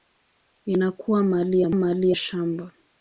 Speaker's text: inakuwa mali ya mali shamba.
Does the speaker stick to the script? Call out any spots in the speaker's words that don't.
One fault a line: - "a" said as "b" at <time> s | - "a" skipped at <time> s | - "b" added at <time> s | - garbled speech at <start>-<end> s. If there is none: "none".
none